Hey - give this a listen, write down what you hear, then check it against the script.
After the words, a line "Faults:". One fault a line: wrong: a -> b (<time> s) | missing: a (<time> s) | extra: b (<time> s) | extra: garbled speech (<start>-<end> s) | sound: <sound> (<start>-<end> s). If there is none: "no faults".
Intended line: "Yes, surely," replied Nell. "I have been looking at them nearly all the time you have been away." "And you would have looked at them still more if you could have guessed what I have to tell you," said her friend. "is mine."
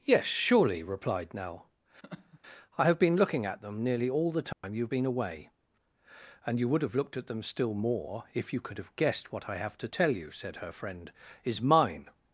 "Yes, surely," replied Nell. "I have been looking at them nearly all the time you have been away." "And you would have looked at them still more if you could have guessed what I have to tell you," said her friend. "is mine."
Faults:
sound: laugh (2.0-2.4 s)
sound: dropout (4.5-4.6 s)